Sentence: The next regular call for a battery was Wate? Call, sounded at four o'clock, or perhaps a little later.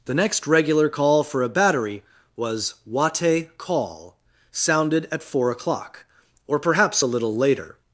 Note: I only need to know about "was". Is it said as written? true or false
true